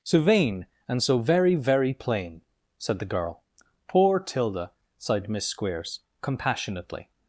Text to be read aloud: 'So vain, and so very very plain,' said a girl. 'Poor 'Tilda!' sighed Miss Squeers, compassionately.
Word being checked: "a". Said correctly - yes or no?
no